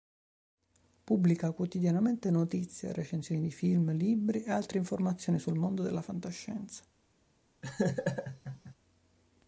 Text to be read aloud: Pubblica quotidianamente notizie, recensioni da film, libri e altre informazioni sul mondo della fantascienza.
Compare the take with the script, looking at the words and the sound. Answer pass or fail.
fail